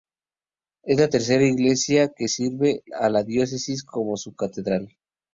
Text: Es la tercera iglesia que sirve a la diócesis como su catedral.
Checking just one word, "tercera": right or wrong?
right